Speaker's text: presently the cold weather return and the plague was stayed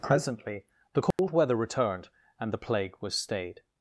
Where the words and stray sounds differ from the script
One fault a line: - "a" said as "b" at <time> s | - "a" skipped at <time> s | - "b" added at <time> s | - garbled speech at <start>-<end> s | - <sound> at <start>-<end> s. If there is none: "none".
- dropout at 1.1-1.2 s
- "return" said as "returned" at 1.5 s